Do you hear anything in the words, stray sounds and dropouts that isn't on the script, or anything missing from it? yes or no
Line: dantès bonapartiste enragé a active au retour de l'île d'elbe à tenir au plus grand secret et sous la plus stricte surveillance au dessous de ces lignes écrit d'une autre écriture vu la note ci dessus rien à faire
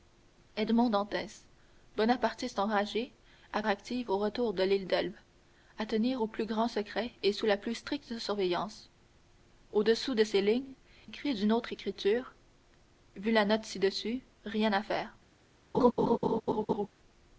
yes